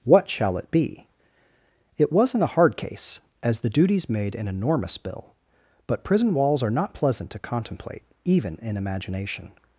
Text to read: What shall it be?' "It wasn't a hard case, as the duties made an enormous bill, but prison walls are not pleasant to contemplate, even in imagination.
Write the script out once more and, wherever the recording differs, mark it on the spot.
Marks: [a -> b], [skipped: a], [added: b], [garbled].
What shall it be?' "It wasn't a hard case, as the duties made an enormous bill, but prison walls are not pleasant to contemplate, even in imagination.